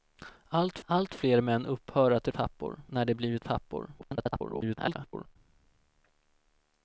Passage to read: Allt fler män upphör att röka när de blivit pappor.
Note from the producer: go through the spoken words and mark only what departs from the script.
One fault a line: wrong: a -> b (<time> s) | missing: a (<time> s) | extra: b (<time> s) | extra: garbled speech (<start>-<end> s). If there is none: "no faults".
extra: allt (0.8 s)
wrong: röka -> pappor (2.3 s)
extra: garbled speech (4.0-5.4 s)